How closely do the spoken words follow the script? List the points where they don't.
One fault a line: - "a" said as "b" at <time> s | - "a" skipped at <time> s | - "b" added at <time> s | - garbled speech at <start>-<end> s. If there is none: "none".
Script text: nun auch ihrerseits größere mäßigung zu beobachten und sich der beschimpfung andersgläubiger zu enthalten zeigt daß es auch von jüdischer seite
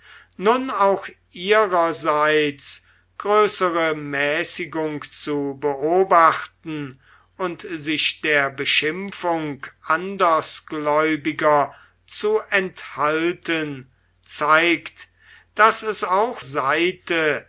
- "von jüdischer" skipped at 16.4 s